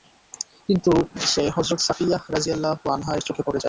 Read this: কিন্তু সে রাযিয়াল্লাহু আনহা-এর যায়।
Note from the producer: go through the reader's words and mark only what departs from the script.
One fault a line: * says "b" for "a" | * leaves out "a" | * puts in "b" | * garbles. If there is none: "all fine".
* puts in "হযরত সাফিয়্যাহ"
* puts in "চোখে পড়ে"